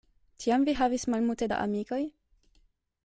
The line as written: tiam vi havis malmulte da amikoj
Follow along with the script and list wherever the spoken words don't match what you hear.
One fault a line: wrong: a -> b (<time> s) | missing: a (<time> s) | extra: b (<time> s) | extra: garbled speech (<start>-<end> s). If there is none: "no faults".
no faults